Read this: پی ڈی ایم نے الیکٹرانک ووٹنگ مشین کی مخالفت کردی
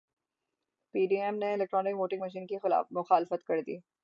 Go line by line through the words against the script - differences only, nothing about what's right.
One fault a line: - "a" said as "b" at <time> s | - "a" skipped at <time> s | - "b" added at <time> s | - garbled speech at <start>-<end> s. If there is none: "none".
none